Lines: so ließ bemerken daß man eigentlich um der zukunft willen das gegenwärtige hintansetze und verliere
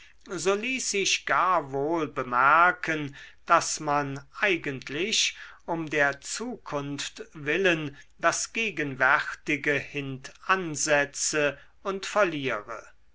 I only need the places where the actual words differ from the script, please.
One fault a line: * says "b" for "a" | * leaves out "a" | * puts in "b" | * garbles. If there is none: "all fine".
* puts in "sich gar wohl"